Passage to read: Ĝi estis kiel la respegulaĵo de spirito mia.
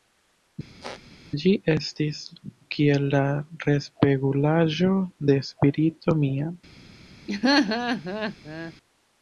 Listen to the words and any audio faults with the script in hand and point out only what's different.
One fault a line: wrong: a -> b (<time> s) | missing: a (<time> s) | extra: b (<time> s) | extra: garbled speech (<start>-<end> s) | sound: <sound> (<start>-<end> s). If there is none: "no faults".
sound: squeak (0.8-1.0 s)
sound: laugh (7.3-8.7 s)